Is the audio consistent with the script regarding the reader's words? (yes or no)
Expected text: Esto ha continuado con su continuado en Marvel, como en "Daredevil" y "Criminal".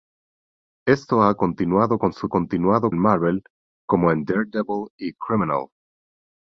yes